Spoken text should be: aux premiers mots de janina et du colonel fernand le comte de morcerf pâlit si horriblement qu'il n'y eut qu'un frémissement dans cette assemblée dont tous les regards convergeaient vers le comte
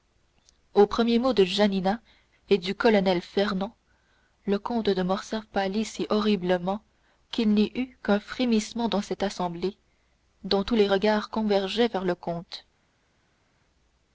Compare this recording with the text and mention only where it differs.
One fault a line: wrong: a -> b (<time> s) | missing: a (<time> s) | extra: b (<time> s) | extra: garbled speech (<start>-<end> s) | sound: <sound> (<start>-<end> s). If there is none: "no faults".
no faults